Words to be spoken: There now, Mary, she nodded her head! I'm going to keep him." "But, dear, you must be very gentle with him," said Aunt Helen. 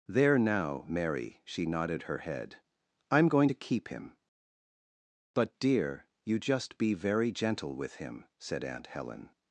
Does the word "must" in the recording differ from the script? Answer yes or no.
yes